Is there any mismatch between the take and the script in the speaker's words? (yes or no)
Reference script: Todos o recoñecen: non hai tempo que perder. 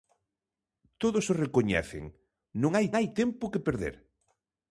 yes